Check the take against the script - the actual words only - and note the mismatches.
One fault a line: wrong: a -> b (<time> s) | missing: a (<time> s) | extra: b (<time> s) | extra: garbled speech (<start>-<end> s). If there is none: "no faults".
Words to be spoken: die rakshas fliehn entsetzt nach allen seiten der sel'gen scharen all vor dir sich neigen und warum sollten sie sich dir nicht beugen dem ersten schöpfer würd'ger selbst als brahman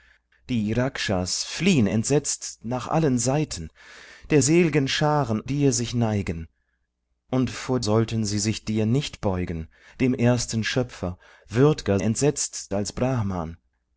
missing: all vor (5.4 s)
wrong: warum -> vor (7.5 s)
wrong: selbst -> entsetzt (12.0 s)